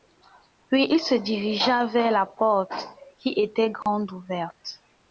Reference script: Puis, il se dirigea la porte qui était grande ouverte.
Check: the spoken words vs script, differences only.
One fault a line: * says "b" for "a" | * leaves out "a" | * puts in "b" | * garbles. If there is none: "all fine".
* puts in "vers"